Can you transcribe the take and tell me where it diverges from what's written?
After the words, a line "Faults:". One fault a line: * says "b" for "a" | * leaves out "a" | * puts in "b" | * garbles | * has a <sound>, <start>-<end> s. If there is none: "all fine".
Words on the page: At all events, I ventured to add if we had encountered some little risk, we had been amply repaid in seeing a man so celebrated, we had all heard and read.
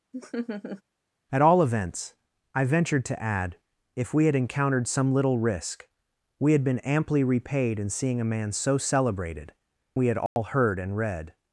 At all events, I ventured to add if we had encountered some little risk, we had been amply repaid in seeing a man so celebrated, we had all heard and read.
Faults:
* has a laugh, 0.1-0.8 s
* has a dropout, 10.3-10.4 s